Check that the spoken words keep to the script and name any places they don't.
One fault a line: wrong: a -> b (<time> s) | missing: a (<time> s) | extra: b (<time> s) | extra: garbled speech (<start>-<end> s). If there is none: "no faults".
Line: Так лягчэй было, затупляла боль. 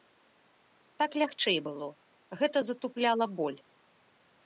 extra: гэта (2.4 s)